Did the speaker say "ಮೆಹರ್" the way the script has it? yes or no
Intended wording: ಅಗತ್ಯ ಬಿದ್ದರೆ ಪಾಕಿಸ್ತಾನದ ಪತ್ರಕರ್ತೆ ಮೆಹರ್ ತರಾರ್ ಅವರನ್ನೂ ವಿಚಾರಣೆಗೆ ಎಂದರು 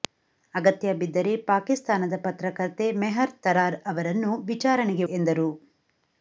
yes